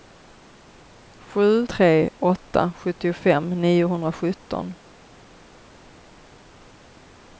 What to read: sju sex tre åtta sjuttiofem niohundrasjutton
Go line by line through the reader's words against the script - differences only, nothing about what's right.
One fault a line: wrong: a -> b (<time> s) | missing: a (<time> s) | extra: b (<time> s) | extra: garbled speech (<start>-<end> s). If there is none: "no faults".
missing: sex (1.7 s)